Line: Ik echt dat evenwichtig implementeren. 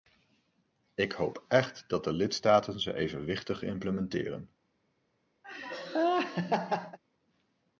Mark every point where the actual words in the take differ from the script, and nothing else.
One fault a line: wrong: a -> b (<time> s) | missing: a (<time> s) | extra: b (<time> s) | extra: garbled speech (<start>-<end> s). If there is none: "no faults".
extra: hoop (1.1 s)
extra: de lidstaten ze (2.0 s)